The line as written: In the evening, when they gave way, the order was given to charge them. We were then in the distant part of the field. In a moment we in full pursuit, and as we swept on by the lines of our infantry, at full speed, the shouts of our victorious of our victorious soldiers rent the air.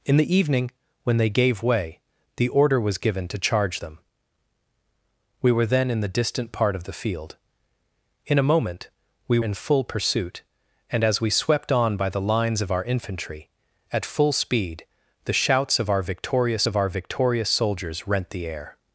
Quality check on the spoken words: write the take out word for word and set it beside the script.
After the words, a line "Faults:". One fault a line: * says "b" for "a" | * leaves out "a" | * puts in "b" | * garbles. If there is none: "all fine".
In the evening, when they gave way, the order was given to charge them. We were then in the distant part of the field. In a moment we in full pursuit, and as we swept on by the lines of our infantry, at full speed, the shouts of our victorious of our victorious soldiers rent the air.
Faults:
all fine